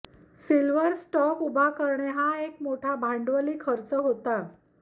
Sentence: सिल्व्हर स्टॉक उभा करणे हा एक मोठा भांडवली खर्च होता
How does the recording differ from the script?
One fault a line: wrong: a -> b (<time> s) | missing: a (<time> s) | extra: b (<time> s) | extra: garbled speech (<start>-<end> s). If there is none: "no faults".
no faults